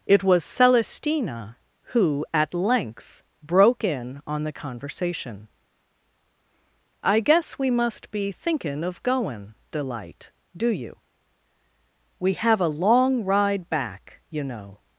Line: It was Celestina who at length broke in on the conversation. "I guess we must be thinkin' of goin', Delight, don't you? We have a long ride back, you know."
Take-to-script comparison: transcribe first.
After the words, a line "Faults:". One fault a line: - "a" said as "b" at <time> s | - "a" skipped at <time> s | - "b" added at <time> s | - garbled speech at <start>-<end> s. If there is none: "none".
It was Celestina who at length broke in on the conversation. "I guess we must be thinkin' of goin', Delight, do you? We have a long ride back, you know."
Faults:
- "don't" said as "do" at 10.6 s